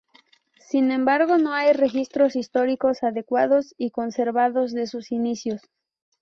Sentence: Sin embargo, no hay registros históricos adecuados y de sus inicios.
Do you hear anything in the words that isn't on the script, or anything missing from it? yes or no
yes